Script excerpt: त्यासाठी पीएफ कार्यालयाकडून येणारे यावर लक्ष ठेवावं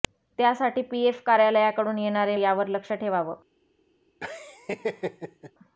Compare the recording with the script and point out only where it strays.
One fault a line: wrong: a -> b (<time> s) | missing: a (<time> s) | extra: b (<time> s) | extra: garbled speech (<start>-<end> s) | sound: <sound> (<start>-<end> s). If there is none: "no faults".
sound: laugh (4.2-5.5 s)